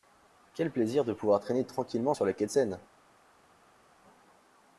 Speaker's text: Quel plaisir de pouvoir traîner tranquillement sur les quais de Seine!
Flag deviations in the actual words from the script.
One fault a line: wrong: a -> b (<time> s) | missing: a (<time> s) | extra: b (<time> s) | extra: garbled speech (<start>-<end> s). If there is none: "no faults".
no faults